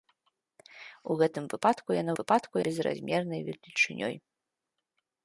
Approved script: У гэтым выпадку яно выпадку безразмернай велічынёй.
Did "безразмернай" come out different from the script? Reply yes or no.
no